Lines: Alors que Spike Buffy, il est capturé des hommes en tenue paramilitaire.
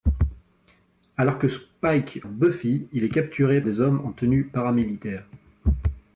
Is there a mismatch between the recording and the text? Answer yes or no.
no